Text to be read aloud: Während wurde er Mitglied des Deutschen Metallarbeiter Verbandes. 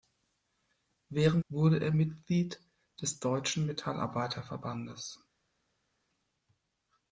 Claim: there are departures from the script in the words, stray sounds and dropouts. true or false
false